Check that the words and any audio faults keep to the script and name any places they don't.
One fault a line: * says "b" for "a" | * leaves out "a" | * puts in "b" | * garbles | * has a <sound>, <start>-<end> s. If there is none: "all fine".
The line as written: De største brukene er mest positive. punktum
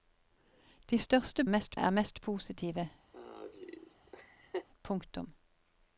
* says "mest" for "brukene"
* has a laugh, 3.1-4.7 s